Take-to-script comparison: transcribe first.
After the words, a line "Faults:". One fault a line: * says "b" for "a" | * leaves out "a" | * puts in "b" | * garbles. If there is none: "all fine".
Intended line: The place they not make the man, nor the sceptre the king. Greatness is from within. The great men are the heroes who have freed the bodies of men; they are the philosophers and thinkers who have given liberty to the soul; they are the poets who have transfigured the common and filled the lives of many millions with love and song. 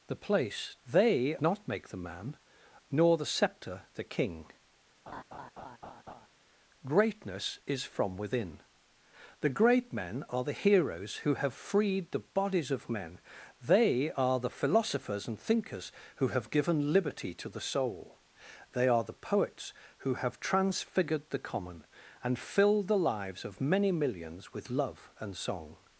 The place they not make the man, nor the sceptre the king. Greatness is from within. The great men are the heroes who have freed the bodies of men; they are the philosophers and thinkers who have given liberty to the soul; they are the poets who have transfigured the common and filled the lives of many millions with love and song.
Faults:
all fine